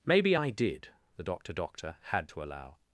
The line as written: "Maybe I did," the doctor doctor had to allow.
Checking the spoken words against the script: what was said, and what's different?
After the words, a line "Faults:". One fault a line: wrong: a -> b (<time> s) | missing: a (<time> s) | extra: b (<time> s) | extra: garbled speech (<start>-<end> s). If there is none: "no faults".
"Maybe I did," the doctor doctor had to allow.
Faults:
no faults